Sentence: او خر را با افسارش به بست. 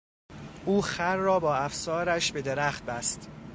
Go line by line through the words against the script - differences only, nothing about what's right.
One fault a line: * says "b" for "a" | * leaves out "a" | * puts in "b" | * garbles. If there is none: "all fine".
* puts in "درخت"